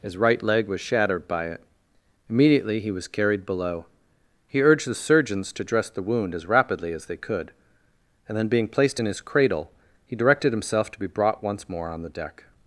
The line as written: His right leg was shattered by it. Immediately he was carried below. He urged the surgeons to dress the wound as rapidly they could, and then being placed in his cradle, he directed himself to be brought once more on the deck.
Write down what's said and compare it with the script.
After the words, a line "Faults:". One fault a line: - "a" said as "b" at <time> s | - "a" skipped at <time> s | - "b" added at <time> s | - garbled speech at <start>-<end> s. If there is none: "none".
His right leg was shattered by it. Immediately he was carried below. He urged the surgeons to dress the wound as rapidly as they could, and then being placed in his cradle, he directed himself to be brought once more on the deck.
Faults:
- "as" added at 6.9 s